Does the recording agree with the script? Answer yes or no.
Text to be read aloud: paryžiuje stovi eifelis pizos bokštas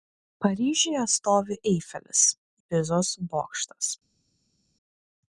yes